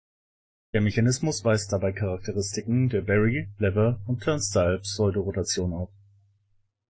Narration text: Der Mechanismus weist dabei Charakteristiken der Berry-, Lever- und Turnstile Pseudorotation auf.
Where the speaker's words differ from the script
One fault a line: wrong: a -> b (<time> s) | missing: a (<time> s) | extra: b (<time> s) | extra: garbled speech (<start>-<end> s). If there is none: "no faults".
no faults